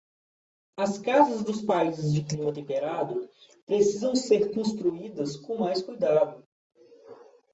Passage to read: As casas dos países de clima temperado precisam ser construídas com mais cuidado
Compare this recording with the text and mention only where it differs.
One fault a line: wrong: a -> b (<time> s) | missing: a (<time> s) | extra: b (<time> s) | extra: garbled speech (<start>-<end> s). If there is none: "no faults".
no faults